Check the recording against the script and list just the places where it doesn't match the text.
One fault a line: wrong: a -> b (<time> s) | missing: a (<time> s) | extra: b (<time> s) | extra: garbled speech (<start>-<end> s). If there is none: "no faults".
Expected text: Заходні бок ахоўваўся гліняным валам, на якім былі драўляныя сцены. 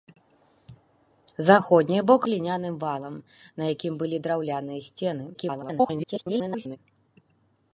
missing: ахоўваўся (2.2 s)
extra: garbled speech (5.3-6.8 s)